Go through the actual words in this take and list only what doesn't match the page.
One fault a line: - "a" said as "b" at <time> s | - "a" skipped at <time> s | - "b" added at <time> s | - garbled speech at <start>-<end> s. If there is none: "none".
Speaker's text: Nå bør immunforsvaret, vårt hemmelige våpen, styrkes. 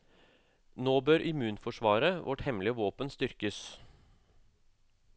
none